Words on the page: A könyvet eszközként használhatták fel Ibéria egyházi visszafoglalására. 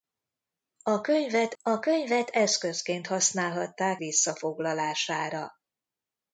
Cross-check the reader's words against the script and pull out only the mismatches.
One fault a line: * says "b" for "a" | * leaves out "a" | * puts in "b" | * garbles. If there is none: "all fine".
* puts in "a könyvet"
* leaves out "fel Ibéria egyházi"